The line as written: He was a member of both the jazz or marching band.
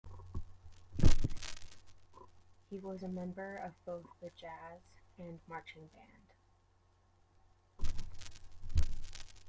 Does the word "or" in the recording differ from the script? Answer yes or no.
yes